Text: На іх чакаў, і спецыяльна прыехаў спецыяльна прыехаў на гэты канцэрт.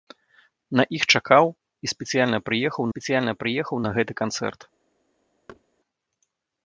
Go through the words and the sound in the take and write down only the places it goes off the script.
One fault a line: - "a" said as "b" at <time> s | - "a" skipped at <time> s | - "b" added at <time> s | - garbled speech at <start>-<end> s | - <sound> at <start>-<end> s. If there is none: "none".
- thud at 5.5-5.6 s